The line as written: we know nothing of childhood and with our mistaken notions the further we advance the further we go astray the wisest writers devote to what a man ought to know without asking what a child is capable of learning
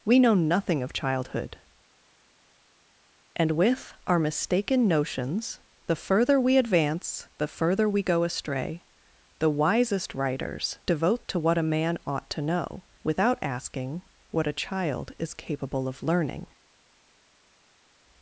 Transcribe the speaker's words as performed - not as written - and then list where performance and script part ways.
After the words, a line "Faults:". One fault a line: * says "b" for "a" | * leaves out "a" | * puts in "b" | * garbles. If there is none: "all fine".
we know nothing of childhood and with our mistaken notions the further we advance the further we go astray the wisest writers devote to what a man ought to know without asking what a child is capable of learning
Faults:
all fine